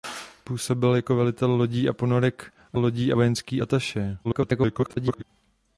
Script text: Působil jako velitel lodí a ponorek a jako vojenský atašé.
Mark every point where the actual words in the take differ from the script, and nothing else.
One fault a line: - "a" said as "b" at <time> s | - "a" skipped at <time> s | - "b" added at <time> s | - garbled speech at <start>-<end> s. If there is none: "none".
- "jako" said as "lodí" at 2.7 s
- garbled speech at 4.2-5.2 s